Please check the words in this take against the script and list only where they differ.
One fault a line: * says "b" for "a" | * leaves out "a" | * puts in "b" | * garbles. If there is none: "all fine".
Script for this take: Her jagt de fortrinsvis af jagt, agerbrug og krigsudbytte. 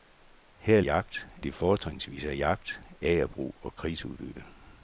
all fine